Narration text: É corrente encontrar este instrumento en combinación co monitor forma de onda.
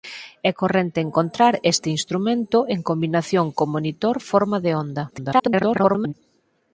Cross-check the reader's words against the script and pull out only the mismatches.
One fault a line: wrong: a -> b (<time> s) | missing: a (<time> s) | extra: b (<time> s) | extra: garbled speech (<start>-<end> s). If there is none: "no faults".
extra: garbled speech (5.1-6.1 s)